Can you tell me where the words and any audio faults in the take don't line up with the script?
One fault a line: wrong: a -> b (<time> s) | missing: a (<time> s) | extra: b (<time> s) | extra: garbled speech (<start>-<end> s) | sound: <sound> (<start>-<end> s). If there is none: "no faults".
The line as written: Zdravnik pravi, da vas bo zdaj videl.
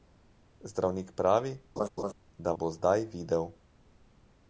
sound: laugh (1.8-2.1 s)
missing: vas (2.5 s)